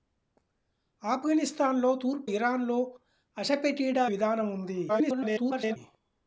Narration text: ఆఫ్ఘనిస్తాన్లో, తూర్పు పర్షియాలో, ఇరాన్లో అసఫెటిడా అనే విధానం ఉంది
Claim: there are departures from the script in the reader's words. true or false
true